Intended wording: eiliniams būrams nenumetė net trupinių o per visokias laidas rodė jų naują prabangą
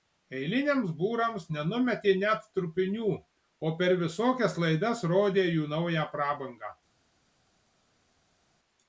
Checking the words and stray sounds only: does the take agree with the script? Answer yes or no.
yes